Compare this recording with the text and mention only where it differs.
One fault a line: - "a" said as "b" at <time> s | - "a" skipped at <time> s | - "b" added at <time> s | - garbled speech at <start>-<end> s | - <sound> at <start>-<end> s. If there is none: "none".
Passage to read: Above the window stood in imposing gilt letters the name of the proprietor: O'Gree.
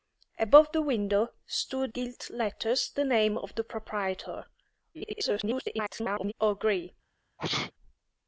- "in imposing" skipped at 1.9 s
- garbled speech at 4.9-6.3 s
- sneeze at 7.4-7.7 s